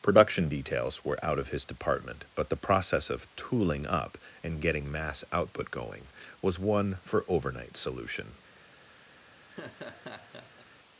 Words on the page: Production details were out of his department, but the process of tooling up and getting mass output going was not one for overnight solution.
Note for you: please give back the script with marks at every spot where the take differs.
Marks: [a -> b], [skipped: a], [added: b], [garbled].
Production details were out of his department, but the process of tooling up and getting mass output going was [skipped: not] one for overnight solution.